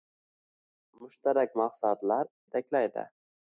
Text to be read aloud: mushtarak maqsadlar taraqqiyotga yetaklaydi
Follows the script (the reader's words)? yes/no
no